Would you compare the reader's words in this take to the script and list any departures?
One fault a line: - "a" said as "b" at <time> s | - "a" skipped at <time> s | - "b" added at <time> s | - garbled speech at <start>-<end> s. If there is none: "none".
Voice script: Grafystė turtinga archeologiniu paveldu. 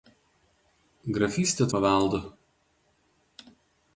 - "turtinga archeologiniu" skipped at 1.7 s